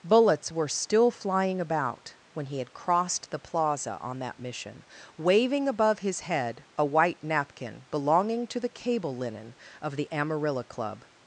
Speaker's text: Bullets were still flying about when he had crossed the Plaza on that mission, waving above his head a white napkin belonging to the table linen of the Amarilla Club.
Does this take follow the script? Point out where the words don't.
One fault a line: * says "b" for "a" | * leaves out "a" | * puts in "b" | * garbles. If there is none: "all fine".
* says "cable" for "table"